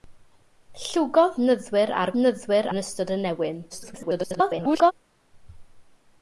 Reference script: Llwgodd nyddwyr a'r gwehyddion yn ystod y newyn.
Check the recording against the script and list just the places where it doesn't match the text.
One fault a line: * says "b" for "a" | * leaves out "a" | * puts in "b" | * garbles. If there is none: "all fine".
* says "nyddwyr" for "gwehyddion"
* garbles